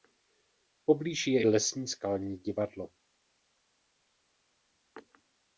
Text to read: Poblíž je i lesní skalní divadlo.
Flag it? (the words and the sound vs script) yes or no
no